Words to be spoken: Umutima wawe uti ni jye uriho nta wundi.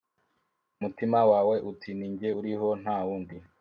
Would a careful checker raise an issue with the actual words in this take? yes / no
no